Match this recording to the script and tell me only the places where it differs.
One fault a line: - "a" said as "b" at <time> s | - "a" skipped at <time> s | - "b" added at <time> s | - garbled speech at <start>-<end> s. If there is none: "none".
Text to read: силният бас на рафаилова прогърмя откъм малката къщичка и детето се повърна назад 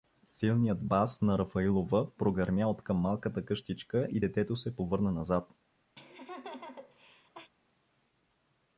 none